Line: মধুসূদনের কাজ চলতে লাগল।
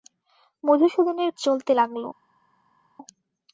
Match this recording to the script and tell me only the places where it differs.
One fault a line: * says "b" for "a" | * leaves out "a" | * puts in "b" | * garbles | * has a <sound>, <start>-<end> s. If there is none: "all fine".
* leaves out "কাজ"